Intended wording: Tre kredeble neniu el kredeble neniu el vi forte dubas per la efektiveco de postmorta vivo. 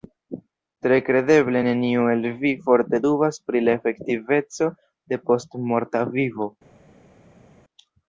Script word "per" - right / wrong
wrong